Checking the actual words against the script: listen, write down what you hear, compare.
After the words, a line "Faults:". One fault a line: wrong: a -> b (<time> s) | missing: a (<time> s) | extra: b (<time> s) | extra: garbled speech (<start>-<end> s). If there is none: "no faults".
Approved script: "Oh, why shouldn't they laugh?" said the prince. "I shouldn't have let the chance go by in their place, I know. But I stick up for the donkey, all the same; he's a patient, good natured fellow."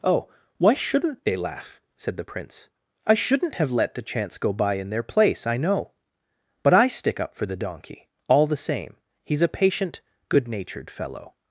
"Oh, why shouldn't they laugh?" said the prince. "I shouldn't have let the chance go by in their place, I know. But I stick up for the donkey, all the same; he's a patient, good natured fellow."
Faults:
no faults